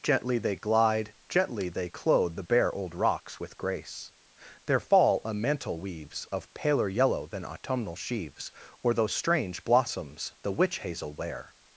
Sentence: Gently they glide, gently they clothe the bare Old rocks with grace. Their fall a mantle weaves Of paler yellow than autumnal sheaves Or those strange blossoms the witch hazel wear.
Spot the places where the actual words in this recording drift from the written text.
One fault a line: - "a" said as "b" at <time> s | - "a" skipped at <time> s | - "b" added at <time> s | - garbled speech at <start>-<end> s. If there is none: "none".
none